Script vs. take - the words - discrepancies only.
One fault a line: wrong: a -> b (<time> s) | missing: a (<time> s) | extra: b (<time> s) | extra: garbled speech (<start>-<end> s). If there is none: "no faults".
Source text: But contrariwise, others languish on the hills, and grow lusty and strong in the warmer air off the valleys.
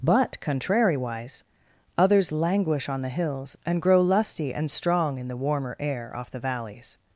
no faults